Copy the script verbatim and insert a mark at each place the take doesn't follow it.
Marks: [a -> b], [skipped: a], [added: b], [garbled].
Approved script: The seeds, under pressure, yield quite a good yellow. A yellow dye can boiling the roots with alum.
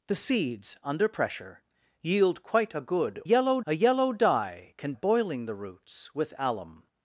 The seeds, under pressure, yield quite a good yellow. A yellow dye can boiling the roots with alum.